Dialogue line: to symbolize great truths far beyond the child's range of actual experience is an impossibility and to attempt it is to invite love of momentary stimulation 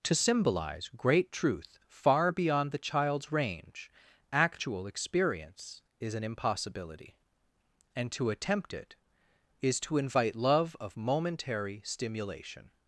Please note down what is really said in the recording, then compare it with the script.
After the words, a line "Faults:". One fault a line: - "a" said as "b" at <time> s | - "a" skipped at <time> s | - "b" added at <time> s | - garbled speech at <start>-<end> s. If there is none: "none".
to symbolize great truth far beyond the child's range actual experience is an impossibility and to attempt it is to invite love of momentary stimulation
Faults:
- "truths" said as "truth" at 1.3 s
- "of" skipped at 3.9 s